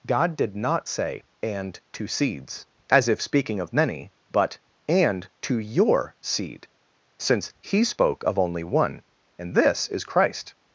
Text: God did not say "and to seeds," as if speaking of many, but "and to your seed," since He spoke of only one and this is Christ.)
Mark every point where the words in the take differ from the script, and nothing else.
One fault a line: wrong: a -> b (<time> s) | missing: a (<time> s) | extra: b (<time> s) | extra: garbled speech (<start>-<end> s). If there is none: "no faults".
no faults